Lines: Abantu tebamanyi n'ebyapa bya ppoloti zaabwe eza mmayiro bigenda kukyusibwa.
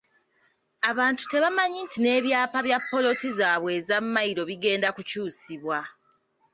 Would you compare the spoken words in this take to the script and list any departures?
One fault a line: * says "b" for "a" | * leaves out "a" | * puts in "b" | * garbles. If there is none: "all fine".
* puts in "nti"